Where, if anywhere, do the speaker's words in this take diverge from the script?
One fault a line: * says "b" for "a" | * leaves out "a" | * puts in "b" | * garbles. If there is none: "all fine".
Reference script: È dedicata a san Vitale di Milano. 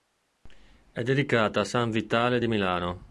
all fine